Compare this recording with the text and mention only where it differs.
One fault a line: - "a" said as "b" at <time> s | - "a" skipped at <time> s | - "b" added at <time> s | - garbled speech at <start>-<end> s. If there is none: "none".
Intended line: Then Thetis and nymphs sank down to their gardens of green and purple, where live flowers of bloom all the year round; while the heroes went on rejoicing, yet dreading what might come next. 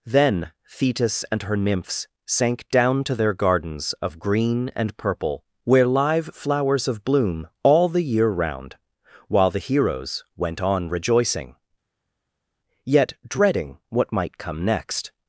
- "her" added at 1.4 s